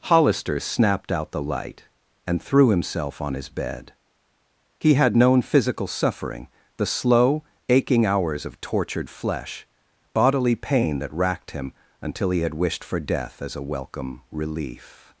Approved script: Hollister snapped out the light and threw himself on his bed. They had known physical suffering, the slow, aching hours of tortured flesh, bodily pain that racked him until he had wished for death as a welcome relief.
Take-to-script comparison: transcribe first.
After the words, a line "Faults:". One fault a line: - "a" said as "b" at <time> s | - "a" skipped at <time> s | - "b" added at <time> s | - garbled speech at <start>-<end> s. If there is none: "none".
Hollister snapped out the light and threw himself on his bed. He had known physical suffering, the slow, aching hours of tortured flesh, bodily pain that racked him until he had wished for death as a welcome relief.
Faults:
- "They" said as "He" at 4.8 s